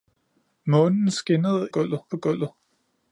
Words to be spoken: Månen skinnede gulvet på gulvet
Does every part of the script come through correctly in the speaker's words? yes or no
yes